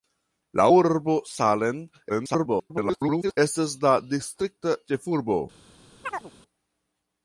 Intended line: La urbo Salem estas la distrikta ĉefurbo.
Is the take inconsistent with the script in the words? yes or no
yes